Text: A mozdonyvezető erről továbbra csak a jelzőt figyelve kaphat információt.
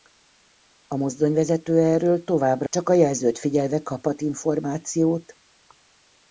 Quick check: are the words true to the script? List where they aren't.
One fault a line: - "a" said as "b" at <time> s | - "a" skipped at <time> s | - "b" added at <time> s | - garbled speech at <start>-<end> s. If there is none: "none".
none